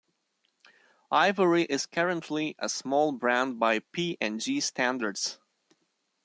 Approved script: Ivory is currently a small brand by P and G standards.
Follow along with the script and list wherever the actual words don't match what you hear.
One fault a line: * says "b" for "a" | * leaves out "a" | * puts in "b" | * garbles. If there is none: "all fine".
all fine